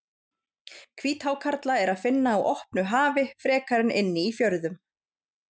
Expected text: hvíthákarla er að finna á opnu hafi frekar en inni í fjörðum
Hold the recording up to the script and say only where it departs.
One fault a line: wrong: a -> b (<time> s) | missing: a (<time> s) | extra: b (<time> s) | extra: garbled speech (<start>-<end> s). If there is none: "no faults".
no faults